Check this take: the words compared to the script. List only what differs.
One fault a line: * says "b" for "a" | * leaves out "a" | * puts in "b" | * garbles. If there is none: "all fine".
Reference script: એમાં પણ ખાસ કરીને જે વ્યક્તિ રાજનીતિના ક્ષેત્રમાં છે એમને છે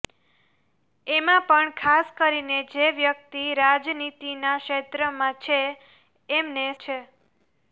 all fine